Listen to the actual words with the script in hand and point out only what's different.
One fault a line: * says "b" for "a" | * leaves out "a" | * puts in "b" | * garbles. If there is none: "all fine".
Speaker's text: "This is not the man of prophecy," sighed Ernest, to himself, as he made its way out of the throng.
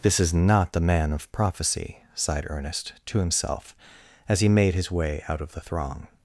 * says "his" for "its"